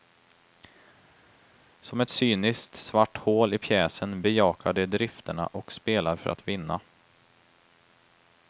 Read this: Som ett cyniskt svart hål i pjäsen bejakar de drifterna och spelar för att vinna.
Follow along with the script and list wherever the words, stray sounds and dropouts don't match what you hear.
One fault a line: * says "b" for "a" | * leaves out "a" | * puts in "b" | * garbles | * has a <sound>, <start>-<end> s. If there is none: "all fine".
all fine